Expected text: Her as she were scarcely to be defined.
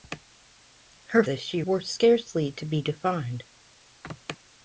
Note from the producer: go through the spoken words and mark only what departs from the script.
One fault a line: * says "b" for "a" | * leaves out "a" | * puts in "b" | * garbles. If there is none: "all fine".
all fine